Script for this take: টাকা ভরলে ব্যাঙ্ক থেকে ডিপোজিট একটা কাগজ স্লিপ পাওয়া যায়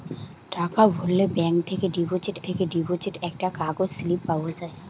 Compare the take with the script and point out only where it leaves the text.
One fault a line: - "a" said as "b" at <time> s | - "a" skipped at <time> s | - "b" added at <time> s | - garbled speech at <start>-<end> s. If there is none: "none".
- "থেকে ডিপোজিট" added at 2.5 s